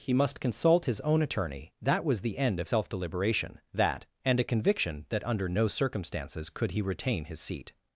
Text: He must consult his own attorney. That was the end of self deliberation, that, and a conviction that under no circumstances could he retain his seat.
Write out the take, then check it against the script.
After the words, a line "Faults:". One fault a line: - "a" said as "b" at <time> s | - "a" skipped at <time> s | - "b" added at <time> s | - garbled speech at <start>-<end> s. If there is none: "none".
He must consult his own attorney. That was the end of self deliberation, that, and a conviction that under no circumstances could he retain his seat.
Faults:
none